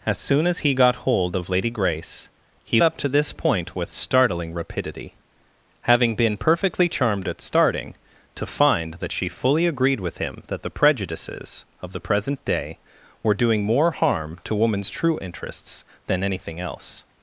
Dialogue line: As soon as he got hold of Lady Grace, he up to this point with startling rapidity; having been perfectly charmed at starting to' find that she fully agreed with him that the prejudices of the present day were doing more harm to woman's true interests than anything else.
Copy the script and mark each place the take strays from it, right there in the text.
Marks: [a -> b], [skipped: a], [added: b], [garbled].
As soon as he got hold of Lady Grace, he up to this point with startling rapidity; having been perfectly charmed at starting to' find that she fully agreed with him that the prejudices of the present day were doing more harm to woman's true interests than anything else.